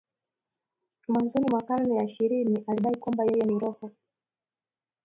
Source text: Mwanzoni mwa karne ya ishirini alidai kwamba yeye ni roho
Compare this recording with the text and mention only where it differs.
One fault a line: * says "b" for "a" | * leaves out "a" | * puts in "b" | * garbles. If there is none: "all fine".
all fine